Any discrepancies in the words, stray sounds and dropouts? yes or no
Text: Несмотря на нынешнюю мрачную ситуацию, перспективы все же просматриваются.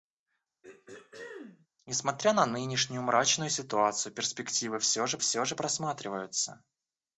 yes